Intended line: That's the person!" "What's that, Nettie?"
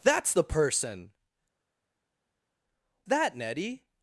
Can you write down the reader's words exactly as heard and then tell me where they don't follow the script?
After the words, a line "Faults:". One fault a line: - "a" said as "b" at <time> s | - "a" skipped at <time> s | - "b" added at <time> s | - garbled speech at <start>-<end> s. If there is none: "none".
That's the person!" "That, Nettie?"
Faults:
- "What's" skipped at 1.1 s